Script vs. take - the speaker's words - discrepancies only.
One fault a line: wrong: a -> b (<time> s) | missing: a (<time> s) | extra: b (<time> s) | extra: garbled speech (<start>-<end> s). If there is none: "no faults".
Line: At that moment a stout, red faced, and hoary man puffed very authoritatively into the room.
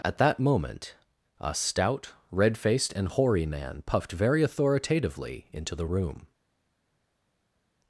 no faults